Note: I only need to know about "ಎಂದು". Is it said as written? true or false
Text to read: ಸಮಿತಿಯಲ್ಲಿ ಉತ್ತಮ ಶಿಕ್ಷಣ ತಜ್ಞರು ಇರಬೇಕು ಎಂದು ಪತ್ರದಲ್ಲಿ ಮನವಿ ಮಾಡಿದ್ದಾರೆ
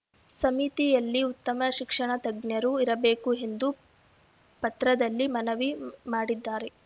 true